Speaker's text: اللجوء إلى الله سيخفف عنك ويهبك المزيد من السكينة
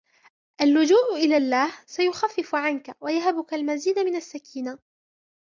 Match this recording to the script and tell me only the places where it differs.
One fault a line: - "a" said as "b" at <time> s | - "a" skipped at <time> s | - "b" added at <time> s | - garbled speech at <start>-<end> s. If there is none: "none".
none